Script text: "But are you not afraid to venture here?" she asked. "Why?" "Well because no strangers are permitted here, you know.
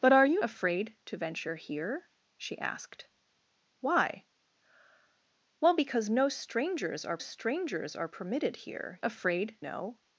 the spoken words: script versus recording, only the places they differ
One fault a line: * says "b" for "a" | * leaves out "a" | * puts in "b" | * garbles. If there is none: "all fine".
* leaves out "not"
* puts in "strangers are"
* says "afraid" for "you"